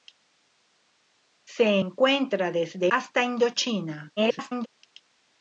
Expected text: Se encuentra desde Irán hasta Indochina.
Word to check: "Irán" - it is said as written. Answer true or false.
false